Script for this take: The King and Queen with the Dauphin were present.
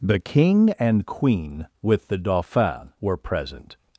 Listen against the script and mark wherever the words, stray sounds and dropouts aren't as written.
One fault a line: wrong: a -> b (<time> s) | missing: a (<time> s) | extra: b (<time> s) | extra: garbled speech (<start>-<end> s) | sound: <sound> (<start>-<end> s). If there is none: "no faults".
no faults